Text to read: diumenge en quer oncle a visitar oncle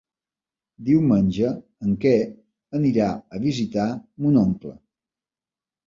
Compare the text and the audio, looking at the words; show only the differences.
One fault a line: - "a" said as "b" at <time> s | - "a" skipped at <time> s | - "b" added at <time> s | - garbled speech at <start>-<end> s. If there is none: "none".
- "oncle" said as "anirà" at 2.8 s
- "mon" added at 4.3 s